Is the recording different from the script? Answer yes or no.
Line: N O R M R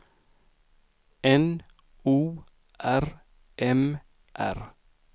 no